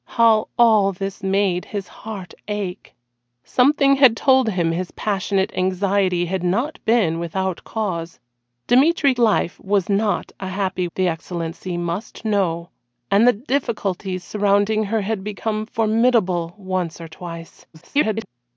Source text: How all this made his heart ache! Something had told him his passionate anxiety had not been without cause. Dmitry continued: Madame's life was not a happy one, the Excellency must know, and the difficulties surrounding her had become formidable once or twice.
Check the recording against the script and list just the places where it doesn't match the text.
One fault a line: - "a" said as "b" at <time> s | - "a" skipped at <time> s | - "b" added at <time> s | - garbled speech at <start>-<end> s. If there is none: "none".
- "continued Madame's" skipped at 9.1 s
- "one" skipped at 10.9 s
- garbled speech at 17.7-18.3 s